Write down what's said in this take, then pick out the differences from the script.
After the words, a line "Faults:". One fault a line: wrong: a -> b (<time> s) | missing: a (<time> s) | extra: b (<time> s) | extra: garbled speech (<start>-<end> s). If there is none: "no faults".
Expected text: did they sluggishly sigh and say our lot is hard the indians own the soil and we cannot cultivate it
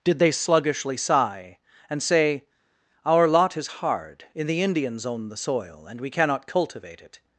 did they sluggishly sigh and say our lot is hard in the indians own the soil and we cannot cultivate it
Faults:
extra: in (4.3 s)